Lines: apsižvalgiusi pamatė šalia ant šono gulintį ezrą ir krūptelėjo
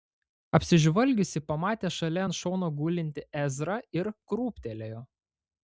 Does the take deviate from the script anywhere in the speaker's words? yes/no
no